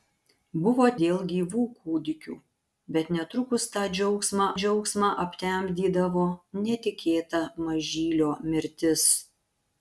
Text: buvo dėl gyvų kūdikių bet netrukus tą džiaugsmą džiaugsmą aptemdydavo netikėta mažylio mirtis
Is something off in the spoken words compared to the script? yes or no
no